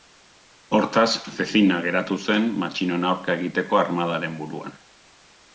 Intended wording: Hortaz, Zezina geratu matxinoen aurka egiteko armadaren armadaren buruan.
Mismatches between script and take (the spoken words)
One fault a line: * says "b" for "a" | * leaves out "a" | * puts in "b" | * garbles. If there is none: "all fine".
* puts in "zen"
* leaves out "armadaren"